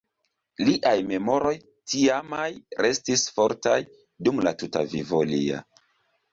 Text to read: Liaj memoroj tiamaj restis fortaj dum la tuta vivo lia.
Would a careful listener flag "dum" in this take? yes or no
no